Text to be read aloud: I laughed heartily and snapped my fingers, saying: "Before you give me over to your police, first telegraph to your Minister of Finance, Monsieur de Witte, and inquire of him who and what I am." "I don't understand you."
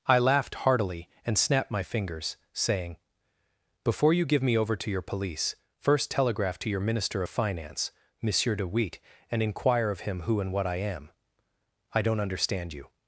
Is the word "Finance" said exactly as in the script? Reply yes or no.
yes